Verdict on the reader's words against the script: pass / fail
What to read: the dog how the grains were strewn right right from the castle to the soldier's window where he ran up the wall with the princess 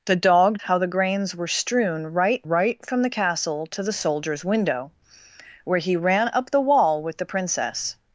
pass